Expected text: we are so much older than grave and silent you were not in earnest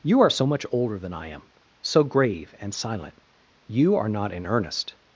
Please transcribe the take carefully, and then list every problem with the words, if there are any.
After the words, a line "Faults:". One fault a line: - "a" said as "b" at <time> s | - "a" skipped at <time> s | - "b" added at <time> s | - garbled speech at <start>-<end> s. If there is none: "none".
you are so much older than i am so grave and silent you are not in earnest
Faults:
- "we" said as "you" at 0.0 s
- "i am so" added at 1.1 s
- "were" said as "are" at 4.0 s